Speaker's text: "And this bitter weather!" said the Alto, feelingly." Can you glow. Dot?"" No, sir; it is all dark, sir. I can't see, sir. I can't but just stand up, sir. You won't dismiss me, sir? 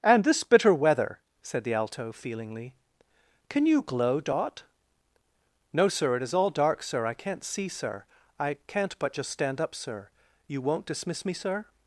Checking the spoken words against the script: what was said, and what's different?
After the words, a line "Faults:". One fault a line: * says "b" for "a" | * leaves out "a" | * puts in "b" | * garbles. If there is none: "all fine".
"And this bitter weather!" said the Alto, feelingly." Can you glow. Dot?"" No, sir; it is all dark, sir. I can't see, sir. I can't but just stand up, sir. You won't dismiss me, sir?
Faults:
all fine